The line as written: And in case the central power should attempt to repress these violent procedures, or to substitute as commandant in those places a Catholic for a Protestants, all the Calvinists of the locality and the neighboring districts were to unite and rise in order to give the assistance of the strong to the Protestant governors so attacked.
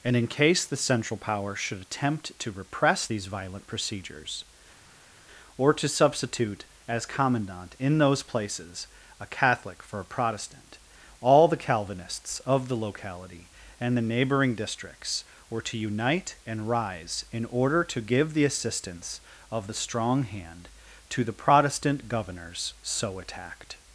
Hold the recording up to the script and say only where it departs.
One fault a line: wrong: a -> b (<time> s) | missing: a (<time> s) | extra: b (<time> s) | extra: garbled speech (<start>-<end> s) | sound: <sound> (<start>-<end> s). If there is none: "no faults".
wrong: Protestants -> Protestant (10.1 s)
extra: hand (20.2 s)